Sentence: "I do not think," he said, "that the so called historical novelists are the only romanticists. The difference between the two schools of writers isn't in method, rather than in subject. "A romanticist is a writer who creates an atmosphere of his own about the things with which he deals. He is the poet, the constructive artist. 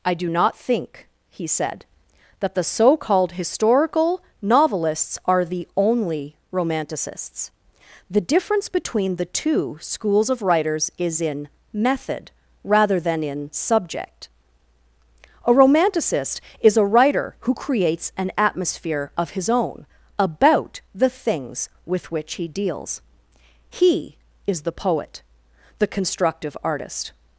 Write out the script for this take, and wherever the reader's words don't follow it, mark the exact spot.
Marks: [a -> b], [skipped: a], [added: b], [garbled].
"I do not think," he said, "that the so called historical novelists are the only romanticists. The difference between the two schools of writers [isn't -> is] in method, rather than in subject. "A romanticist is a writer who creates an atmosphere of his own about the things with which he deals. He is the poet, the constructive artist.